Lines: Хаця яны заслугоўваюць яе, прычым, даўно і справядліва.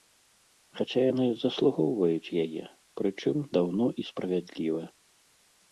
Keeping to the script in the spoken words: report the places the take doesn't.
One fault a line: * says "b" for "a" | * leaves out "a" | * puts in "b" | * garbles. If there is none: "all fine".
all fine